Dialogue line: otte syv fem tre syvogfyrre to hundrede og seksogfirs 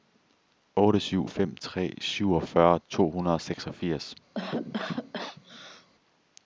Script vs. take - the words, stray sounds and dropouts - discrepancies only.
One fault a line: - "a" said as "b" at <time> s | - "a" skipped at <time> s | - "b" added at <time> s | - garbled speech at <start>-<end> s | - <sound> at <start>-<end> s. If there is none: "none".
- cough at 4.3-5.9 s